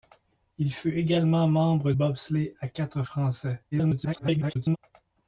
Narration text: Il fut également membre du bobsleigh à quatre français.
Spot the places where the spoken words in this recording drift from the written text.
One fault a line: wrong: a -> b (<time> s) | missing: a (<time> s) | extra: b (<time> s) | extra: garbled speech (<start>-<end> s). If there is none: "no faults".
missing: du (1.9 s)
extra: garbled speech (3.7-4.8 s)